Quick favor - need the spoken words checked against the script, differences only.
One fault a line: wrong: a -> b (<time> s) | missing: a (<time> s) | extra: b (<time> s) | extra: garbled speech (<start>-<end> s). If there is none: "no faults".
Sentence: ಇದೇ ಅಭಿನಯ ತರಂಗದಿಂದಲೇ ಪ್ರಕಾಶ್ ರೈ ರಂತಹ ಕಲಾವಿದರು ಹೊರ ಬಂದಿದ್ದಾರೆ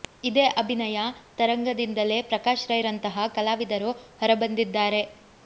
no faults